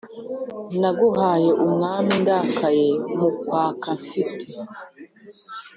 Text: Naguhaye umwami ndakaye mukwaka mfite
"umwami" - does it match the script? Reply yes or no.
yes